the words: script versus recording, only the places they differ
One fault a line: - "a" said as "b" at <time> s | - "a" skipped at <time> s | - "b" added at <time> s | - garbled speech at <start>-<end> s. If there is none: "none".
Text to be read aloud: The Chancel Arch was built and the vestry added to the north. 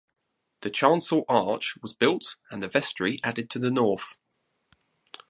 none